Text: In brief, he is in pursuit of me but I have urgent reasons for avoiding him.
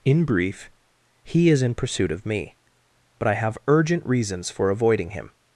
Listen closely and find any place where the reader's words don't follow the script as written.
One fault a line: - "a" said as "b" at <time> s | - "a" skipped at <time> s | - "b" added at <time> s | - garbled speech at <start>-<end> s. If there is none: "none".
none